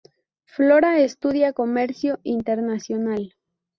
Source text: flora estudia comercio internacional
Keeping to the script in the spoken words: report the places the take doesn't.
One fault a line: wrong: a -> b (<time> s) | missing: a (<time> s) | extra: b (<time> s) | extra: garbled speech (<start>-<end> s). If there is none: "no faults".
no faults